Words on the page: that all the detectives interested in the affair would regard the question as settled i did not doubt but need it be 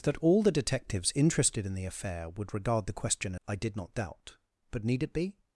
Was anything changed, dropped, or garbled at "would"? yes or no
no